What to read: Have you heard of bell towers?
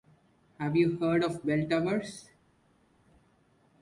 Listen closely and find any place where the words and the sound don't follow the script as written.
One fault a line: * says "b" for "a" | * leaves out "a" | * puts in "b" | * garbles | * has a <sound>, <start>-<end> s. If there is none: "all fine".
all fine